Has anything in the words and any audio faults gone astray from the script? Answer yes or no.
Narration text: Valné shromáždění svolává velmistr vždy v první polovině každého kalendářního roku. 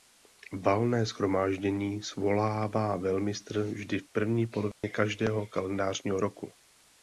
yes